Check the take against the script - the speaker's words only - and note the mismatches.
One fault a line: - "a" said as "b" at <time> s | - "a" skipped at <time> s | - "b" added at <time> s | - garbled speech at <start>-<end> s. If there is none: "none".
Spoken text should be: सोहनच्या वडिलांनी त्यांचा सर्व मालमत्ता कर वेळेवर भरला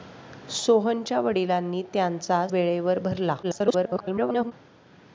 - "सर्व मालमत्ता कर" skipped at 2.5 s
- garbled speech at 3.4-4.5 s